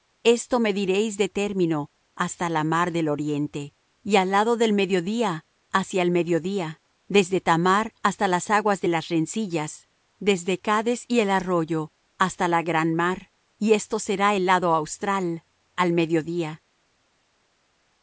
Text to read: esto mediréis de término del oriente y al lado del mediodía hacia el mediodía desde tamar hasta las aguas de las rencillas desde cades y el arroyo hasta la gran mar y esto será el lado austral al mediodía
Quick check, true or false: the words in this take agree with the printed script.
false